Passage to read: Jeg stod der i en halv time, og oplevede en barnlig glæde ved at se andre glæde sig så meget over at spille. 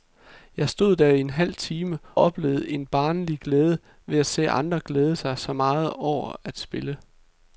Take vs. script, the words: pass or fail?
fail